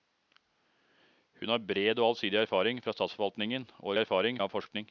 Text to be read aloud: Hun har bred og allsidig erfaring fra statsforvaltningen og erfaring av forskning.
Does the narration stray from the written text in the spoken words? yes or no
no